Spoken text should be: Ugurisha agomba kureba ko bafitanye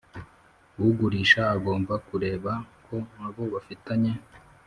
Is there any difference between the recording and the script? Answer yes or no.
yes